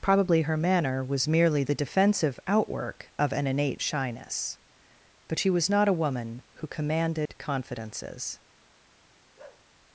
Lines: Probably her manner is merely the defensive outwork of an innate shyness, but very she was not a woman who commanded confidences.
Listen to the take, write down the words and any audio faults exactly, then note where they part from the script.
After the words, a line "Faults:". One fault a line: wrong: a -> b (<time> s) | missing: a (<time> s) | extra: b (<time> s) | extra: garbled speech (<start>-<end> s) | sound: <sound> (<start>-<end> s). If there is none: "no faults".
Probably her manner was merely the defensive outwork of an innate shyness, but she was not a woman who commanded confidences.
Faults:
wrong: is -> was (1.0 s)
missing: very (5.4 s)
sound: dropout (7.3-7.3 s)
sound: bark (9.4-9.7 s)